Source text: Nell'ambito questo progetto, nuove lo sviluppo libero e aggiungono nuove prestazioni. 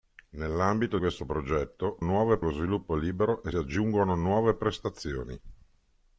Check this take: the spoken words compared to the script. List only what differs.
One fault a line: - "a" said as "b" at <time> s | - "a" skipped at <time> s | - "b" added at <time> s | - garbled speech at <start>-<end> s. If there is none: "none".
none